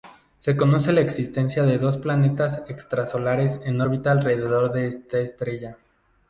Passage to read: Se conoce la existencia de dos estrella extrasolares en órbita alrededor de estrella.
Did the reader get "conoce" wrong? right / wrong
right